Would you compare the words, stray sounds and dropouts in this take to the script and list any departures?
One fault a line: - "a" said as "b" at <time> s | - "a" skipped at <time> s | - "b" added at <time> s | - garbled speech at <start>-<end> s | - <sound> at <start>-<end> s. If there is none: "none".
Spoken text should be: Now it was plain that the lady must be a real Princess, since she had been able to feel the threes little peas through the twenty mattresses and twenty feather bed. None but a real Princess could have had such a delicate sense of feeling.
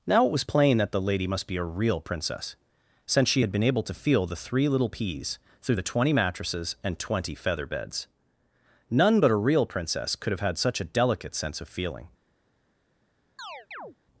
- "threes" said as "three" at 4.4 s
- "bed" said as "beds" at 7.7 s
- chirp at 13.4-14.0 s